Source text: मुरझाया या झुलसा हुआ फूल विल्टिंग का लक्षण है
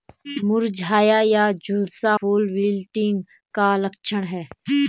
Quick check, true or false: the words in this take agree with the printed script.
false